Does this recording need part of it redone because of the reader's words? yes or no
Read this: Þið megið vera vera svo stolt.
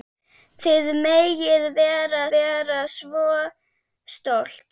no